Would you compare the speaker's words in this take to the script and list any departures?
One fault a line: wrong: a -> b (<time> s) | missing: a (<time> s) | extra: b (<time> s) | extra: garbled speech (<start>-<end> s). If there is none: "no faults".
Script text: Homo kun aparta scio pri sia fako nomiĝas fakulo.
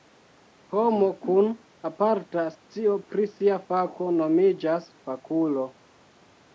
no faults